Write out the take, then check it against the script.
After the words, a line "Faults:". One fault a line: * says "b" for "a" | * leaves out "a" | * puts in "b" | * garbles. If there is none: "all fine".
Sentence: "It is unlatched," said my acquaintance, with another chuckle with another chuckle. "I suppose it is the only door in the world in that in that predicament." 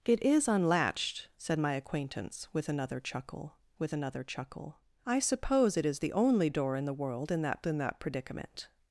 "It is unlatched," said my acquaintance, with another chuckle with another chuckle. "I suppose it is the only door in the world in that in that predicament."
Faults:
all fine